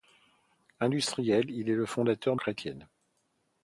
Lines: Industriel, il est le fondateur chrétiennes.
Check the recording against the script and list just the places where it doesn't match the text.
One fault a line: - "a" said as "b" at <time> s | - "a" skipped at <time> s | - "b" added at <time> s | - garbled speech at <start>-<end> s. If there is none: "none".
none